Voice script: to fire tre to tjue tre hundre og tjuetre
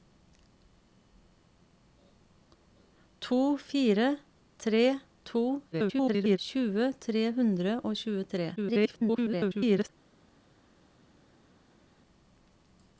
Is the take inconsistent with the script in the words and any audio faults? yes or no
yes